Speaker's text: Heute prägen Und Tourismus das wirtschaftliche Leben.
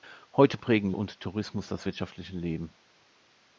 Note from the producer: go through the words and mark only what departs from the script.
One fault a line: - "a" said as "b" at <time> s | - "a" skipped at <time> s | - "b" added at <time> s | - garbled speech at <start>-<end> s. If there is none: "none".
none